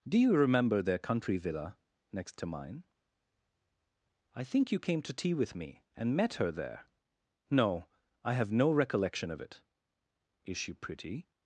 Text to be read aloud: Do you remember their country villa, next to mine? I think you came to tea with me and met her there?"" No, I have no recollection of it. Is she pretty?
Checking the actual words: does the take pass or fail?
pass